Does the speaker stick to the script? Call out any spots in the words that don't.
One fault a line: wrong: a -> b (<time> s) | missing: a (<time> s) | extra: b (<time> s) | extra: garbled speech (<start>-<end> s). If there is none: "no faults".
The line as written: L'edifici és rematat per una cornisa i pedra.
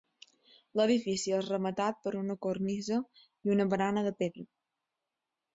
extra: una barana de (3.6 s)